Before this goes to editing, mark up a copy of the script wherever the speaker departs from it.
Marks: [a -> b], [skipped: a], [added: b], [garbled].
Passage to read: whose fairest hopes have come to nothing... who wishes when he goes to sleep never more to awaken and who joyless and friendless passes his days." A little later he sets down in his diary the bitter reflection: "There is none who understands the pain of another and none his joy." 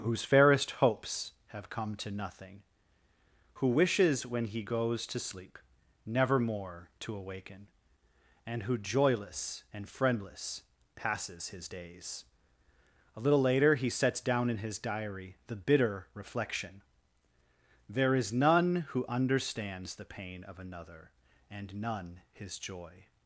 whose fairest hopes have come to nothing... who wishes when he goes to sleep never more to awaken and who joyless and friendless passes his days." A little later he sets down in his diary the bitter reflection: "There is none who understands the pain of another and none his joy."